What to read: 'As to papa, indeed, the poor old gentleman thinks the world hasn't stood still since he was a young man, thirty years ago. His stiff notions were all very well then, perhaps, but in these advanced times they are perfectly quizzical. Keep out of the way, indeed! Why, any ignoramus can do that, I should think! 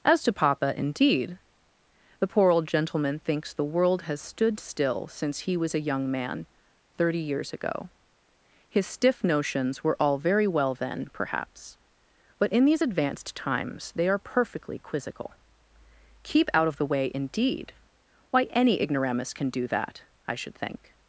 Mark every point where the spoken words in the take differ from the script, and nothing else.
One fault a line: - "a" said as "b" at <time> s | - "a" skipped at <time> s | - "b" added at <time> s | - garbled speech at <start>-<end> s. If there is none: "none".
- "hasn't" said as "has" at 4.0 s